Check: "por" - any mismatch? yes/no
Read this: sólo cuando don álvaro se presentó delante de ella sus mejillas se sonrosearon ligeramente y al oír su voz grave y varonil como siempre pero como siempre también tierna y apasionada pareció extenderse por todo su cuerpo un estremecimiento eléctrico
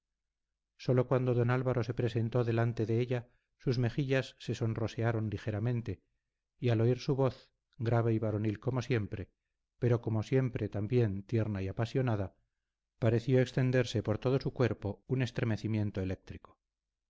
no